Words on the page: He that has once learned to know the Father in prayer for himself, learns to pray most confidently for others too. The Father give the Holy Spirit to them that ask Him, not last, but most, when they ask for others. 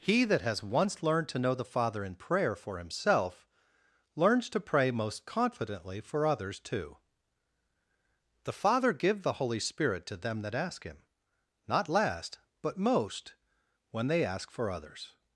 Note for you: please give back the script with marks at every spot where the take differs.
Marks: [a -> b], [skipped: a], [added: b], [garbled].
He that has once learned to know the Father in prayer for himself, learns to pray most confidently for others too. The Father give the Holy Spirit to them that ask Him, not last, but most, when they ask for others.